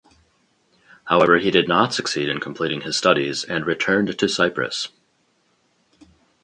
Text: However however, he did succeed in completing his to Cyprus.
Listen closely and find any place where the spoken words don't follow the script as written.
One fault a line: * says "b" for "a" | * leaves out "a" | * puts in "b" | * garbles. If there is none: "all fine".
* leaves out "however"
* puts in "not"
* puts in "studies and returned"